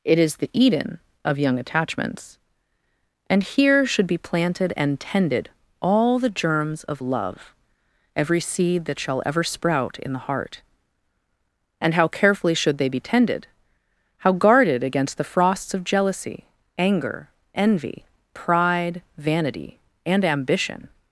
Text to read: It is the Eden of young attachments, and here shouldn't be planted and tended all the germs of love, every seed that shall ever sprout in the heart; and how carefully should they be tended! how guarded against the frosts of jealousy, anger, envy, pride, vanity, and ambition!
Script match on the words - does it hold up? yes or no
no